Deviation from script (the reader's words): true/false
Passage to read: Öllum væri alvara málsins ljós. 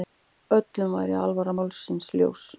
false